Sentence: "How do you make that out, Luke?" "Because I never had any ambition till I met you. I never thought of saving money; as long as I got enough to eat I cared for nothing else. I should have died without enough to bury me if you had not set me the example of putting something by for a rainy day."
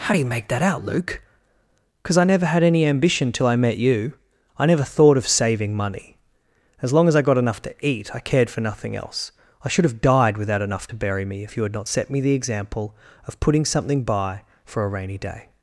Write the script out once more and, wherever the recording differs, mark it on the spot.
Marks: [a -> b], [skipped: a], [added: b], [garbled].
"How do you make that out, Luke?" "Because I never had any ambition till I met you. I never thought of saving money; as long as I got enough to eat I cared for nothing else. I should have died without enough to bury me if you had not set me the example of putting something by for a rainy day."